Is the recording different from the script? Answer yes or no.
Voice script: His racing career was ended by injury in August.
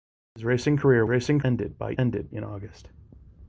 yes